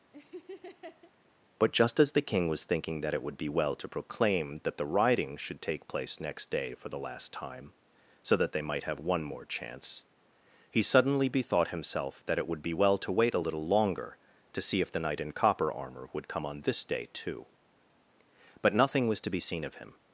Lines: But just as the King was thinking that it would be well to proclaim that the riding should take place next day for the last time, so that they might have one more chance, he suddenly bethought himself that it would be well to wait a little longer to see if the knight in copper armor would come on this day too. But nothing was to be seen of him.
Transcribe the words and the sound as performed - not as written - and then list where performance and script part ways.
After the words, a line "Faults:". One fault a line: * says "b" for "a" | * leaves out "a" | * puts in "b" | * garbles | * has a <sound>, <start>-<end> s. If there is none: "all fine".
But just as the King was thinking that it would be well to proclaim that the riding should take place next day for the last time, so that they might have one more chance, he suddenly bethought himself that it would be well to wait a little longer to see if the knight in copper armor would come on this day too. But nothing was to be seen of him.
Faults:
* has a laugh, 0.1-1.1 s